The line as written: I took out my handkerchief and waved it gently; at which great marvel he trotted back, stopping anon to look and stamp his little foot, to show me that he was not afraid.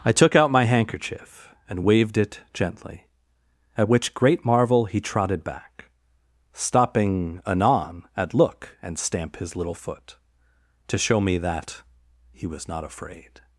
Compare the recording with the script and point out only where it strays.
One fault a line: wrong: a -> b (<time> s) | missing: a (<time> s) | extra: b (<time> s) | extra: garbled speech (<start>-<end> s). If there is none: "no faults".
wrong: to -> at (8.2 s)